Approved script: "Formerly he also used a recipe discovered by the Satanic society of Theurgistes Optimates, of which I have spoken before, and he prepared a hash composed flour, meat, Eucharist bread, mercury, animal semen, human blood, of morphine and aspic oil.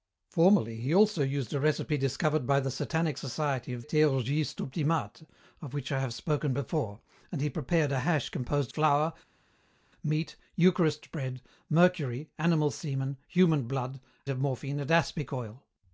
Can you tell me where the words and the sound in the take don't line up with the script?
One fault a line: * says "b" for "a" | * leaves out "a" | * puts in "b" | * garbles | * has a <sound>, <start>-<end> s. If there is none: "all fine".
all fine